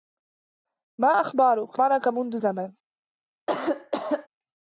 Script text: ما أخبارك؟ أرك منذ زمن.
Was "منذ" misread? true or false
false